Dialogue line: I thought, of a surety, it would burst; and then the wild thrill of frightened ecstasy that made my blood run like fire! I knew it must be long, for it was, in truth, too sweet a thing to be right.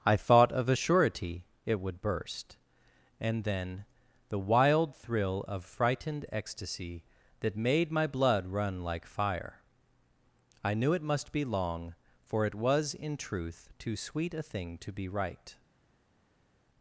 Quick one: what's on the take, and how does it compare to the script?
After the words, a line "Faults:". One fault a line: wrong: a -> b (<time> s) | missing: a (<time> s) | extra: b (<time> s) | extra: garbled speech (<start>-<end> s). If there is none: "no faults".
I thought, of a surety, it would burst; and then the wild thrill of frightened ecstasy that made my blood run like fire! I knew it must be long, for it was, in truth, too sweet a thing to be right.
Faults:
no faults